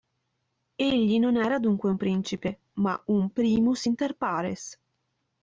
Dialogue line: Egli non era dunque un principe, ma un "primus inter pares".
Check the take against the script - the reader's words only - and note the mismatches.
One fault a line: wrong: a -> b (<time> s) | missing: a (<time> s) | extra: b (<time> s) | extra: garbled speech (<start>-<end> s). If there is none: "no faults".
no faults